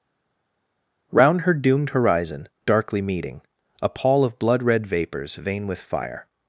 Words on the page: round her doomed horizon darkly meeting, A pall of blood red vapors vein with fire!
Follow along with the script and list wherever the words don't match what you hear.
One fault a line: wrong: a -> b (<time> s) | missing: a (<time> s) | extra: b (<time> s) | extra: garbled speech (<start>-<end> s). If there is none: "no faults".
no faults